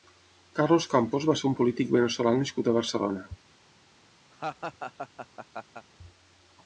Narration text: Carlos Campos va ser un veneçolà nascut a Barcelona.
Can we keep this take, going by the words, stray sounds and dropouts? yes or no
no